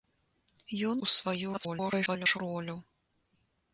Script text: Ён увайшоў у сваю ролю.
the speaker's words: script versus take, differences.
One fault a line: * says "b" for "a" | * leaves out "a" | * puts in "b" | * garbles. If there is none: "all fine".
* leaves out "увайшоў"
* garbles